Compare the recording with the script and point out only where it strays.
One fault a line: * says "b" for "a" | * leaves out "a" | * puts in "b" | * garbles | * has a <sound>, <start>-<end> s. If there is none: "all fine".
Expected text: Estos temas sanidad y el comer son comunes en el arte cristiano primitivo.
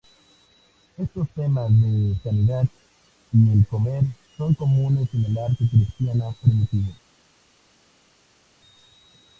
* puts in "de"